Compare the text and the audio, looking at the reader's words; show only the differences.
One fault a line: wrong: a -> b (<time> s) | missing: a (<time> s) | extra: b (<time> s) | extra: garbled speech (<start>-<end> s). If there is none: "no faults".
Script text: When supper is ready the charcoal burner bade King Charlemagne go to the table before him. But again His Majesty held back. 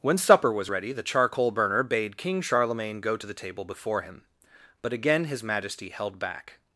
wrong: is -> was (0.5 s)